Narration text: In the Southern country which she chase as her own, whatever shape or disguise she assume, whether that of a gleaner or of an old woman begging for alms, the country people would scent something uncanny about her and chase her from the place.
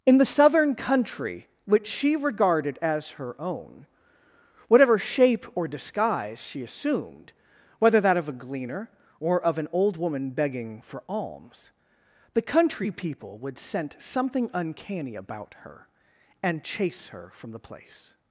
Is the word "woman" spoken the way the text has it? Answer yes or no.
yes